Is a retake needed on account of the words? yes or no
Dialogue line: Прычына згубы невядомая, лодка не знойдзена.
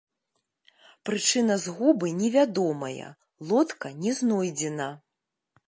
no